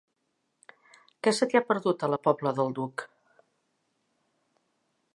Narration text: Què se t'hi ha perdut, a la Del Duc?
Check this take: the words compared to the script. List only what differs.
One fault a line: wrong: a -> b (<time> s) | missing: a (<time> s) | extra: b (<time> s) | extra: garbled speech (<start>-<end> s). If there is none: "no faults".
extra: Pobla (2.3 s)